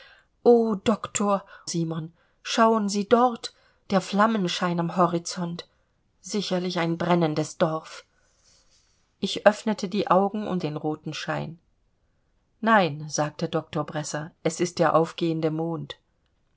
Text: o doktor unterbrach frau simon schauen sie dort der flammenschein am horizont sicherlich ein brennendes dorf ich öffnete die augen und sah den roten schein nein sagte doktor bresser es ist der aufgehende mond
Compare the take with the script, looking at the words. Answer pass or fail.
fail